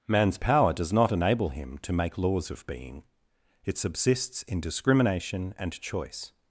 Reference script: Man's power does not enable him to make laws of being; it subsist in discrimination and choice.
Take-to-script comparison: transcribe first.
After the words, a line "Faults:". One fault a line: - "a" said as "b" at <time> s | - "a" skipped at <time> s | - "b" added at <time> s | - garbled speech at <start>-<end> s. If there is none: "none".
Man's power does not enable him to make laws of being; it subsists in discrimination and choice.
Faults:
- "subsist" said as "subsists" at 3.8 s